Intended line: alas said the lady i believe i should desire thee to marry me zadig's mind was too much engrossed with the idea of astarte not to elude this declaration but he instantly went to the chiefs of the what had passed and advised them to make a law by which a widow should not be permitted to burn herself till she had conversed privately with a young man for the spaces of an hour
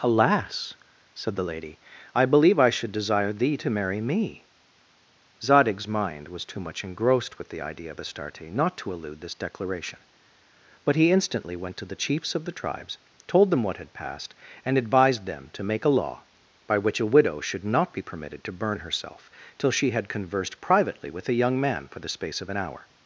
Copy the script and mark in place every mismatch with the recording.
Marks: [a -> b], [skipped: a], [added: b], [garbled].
alas said the lady i believe i should desire thee to marry me zadig's mind was too much engrossed with the idea of astarte not to elude this declaration but he instantly went to the chiefs of the [added: tribes told them] what had passed and advised them to make a law by which a widow should not be permitted to burn herself till she had conversed privately with a young man for the [spaces -> space] of an hour